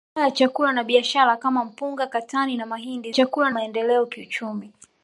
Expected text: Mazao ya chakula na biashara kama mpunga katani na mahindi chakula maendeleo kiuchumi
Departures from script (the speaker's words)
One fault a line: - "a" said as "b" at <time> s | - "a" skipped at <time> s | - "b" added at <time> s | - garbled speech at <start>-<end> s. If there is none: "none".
none